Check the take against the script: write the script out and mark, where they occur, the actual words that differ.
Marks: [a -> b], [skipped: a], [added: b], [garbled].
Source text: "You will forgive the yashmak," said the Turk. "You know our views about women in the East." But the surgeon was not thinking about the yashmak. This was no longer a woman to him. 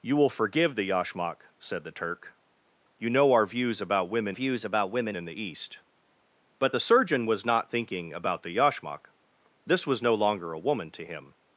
"You will forgive the yashmak," said the Turk. "You know our views about women [added: views about women] in the East." But the surgeon was not thinking about the yashmak. This was no longer a woman to him.